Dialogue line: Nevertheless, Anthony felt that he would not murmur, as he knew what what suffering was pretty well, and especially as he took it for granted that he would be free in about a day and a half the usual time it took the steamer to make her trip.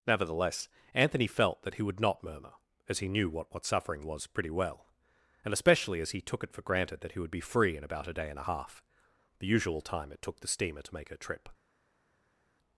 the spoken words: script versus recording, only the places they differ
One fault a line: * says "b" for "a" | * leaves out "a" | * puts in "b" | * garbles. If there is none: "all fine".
all fine